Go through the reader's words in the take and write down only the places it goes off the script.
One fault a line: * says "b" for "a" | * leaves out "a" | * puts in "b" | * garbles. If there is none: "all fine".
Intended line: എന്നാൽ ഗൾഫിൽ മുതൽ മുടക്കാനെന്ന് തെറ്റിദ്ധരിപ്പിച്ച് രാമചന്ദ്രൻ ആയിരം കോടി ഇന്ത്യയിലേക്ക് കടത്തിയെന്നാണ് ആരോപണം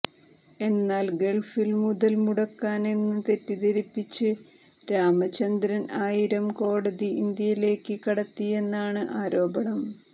all fine